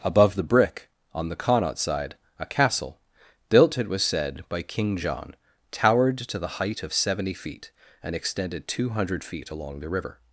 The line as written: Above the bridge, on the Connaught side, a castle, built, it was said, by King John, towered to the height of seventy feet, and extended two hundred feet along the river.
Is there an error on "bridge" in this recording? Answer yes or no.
yes